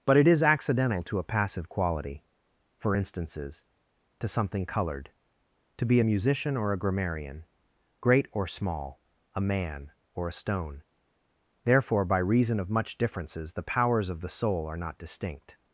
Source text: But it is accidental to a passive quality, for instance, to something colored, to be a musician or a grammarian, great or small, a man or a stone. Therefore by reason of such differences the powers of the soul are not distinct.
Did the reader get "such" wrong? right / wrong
wrong